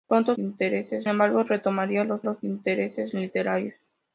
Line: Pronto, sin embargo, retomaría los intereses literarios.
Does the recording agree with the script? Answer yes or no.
no